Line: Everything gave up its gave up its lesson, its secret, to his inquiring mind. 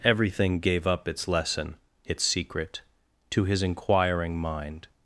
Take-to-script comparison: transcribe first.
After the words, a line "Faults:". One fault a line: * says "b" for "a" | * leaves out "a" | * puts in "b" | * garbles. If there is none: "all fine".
Everything gave up its lesson, its secret, to his inquiring mind.
Faults:
* leaves out "gave up its"